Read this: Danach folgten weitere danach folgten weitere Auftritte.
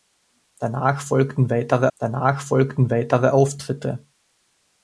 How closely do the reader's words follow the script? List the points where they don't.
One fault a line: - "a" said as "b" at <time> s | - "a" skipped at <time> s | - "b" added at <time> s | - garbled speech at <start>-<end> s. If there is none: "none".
none